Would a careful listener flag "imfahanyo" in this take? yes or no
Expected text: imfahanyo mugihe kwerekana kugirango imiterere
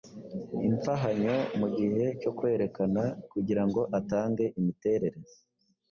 no